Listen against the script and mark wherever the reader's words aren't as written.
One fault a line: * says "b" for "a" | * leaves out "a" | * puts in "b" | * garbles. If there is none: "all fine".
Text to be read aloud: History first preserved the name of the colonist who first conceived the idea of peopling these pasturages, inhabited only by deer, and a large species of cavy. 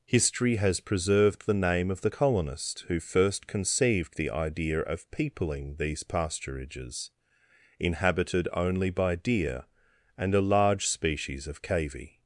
* says "has" for "first"